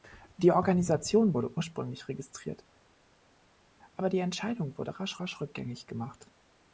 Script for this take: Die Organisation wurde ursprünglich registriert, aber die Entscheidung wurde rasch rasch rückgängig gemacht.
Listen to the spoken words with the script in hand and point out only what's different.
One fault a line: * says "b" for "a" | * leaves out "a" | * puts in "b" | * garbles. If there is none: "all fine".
all fine